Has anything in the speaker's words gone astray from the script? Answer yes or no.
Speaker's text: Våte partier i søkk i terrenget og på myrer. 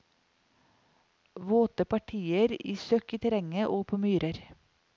no